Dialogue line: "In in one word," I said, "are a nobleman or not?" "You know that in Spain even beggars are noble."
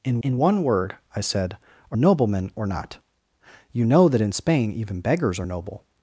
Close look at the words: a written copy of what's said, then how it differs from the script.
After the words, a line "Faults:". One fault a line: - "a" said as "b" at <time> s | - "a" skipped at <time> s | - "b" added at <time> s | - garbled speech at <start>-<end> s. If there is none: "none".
"In in one word," I said, "are a nobleman or not?" "You know that in Spain even beggars are noble."
Faults:
none